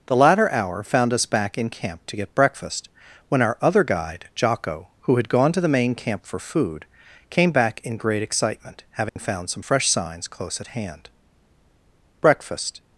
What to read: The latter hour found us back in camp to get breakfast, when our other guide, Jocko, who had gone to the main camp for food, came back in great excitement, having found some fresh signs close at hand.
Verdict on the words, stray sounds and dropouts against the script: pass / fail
fail